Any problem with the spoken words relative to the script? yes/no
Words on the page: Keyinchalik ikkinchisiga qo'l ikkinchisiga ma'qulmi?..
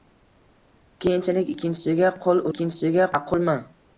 no